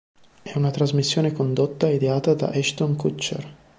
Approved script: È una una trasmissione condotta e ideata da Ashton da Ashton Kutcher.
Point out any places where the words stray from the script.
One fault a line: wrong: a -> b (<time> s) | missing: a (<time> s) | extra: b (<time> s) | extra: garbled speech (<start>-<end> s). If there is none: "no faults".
missing: una (0.7 s)
missing: da Ashton (3.0 s)